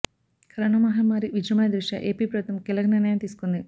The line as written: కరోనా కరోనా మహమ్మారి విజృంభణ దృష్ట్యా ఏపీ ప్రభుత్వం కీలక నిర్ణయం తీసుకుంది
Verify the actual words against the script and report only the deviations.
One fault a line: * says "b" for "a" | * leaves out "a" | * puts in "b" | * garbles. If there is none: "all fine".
* leaves out "కరోనా"